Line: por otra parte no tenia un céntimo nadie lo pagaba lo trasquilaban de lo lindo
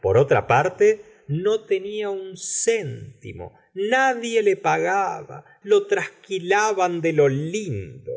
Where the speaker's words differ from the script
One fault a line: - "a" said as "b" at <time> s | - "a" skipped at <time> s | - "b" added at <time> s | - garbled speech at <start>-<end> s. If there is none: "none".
- "lo" said as "le" at 4.4 s